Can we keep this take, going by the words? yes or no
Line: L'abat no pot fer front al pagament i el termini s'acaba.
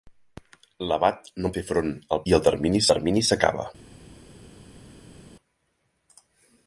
no